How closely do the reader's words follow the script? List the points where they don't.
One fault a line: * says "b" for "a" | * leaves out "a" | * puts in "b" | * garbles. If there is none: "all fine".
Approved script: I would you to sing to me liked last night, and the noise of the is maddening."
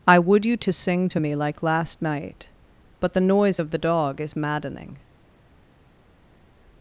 * says "like" for "liked"
* says "but" for "and"
* puts in "dog"